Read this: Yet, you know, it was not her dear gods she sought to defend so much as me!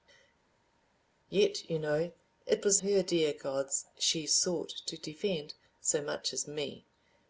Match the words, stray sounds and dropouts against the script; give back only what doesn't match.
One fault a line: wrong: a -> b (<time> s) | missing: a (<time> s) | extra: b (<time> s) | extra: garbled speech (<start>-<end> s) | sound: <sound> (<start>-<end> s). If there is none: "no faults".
missing: not (2.8 s)